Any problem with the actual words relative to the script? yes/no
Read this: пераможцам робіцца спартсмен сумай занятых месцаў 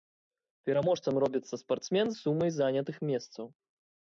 no